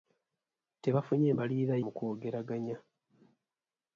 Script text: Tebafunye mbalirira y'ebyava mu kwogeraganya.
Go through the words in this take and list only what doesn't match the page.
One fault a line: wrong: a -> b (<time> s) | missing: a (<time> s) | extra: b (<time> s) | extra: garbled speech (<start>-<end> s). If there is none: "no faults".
missing: y'ebyava (1.7 s)